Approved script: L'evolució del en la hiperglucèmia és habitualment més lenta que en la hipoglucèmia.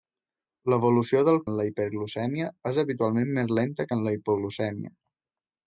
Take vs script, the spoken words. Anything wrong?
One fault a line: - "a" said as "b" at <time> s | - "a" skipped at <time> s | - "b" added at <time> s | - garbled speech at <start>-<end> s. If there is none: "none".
none